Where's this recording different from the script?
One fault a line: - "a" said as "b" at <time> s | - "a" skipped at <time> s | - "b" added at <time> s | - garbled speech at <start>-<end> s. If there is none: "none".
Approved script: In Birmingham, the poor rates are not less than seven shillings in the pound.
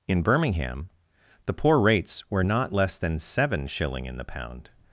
- "are" said as "were" at 2.3 s
- "shillings" said as "shilling" at 3.7 s